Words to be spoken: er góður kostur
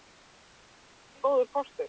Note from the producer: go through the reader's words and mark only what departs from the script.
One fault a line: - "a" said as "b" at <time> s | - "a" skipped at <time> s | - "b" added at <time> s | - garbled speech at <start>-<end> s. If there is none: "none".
none